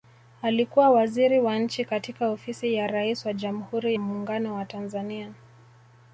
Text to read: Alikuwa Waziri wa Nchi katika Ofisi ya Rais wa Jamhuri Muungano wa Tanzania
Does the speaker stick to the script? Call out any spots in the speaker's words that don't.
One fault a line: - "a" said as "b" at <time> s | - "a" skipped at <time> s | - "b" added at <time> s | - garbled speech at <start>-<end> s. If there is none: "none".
none